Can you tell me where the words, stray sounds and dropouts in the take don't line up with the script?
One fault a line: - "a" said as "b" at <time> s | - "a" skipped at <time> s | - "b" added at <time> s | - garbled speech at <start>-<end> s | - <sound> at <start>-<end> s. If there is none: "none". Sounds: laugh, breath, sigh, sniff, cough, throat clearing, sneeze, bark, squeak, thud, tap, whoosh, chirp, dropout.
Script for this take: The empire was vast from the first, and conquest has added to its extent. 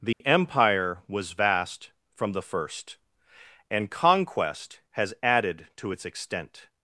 - dropout at 0.1-0.2 s